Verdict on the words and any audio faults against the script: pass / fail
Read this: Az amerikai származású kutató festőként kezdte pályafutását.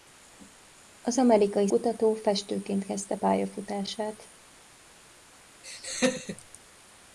fail